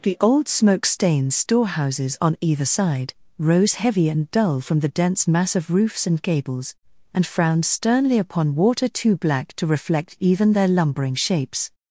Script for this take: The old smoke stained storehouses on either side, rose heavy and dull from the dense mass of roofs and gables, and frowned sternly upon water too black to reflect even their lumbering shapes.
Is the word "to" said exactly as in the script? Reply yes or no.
yes